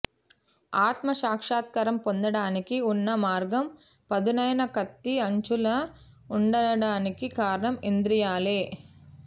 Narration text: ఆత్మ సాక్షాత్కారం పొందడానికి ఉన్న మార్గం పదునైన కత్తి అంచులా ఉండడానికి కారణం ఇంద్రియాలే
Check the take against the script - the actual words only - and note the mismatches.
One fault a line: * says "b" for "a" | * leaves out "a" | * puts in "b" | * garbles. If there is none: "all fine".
all fine